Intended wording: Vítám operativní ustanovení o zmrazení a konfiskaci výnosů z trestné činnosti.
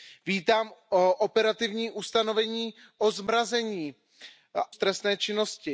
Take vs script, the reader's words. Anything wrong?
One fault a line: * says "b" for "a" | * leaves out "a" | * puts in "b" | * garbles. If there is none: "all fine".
* leaves out "a konfiskaci výnosů"